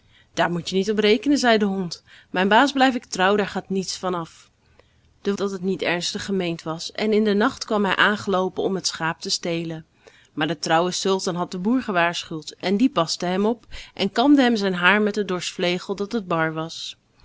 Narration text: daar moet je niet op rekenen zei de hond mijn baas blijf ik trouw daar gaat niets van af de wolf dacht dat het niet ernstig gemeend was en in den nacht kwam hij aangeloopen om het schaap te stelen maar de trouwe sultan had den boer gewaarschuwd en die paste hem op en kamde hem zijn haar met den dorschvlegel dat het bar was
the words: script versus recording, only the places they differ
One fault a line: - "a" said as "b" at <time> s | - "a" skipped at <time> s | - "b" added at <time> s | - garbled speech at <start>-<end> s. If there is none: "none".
- "wolf dacht" skipped at 5.3 s